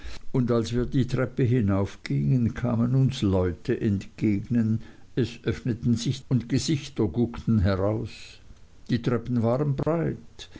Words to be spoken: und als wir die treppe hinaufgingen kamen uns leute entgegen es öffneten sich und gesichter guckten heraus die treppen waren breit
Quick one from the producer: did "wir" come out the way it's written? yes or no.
yes